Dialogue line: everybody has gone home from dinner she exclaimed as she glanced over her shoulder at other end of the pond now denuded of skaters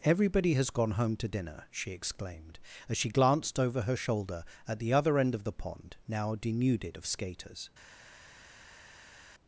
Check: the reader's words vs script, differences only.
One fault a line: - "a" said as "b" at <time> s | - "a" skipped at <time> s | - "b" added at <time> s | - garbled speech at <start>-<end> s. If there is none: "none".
- "from" said as "to" at 1.2 s
- "the" added at 4.8 s